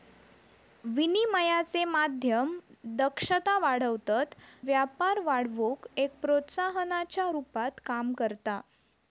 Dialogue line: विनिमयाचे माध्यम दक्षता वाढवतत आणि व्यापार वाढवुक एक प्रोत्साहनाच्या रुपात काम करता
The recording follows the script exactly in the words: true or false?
false